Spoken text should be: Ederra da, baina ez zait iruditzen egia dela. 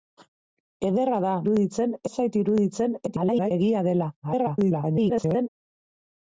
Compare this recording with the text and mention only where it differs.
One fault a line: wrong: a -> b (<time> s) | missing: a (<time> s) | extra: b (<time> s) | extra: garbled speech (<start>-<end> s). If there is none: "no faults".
wrong: baina -> iruditzen (1.4 s)
extra: garbled speech (3.1-3.5 s)
extra: garbled speech (4.2-5.5 s)